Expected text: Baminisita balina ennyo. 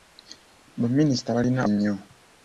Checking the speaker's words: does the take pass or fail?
pass